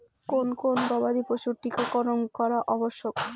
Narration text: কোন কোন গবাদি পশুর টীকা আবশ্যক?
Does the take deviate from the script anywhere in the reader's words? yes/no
yes